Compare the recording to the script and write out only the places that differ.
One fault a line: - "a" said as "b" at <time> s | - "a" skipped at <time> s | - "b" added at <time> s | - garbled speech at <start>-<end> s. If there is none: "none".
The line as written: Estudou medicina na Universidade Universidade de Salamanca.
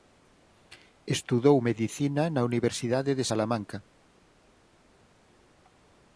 - "Universidade" skipped at 3.1 s